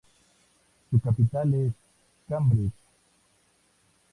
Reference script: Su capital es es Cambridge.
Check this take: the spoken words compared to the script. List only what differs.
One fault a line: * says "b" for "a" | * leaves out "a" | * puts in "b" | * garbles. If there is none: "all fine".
* leaves out "es"